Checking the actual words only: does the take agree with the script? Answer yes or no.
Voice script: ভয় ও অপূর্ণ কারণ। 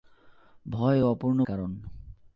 yes